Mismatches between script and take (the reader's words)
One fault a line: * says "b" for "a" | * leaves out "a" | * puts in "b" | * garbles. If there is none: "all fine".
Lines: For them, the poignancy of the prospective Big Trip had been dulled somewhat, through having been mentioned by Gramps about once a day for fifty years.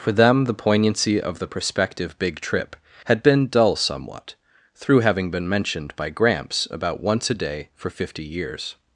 * says "dull" for "dulled"